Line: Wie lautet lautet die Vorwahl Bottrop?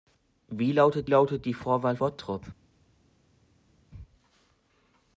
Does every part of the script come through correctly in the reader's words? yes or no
yes